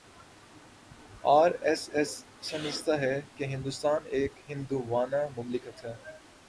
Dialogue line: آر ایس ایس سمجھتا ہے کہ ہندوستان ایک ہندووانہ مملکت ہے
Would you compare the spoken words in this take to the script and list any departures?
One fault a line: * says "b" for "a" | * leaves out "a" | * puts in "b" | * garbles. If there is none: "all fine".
all fine